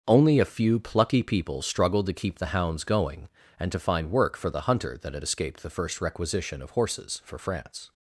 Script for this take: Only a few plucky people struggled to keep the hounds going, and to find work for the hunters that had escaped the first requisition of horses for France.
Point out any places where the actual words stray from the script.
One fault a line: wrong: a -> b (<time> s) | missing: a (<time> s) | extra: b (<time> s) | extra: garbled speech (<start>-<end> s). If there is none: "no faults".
wrong: hunters -> hunter (4.6 s)